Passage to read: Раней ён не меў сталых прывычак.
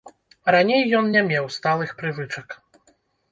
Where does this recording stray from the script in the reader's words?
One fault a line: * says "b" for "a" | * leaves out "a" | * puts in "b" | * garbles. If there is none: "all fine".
all fine